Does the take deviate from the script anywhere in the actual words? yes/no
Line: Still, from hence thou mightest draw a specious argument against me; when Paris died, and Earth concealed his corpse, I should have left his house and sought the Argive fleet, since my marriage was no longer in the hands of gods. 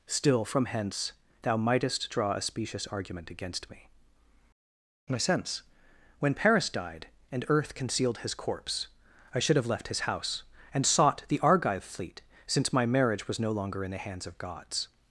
yes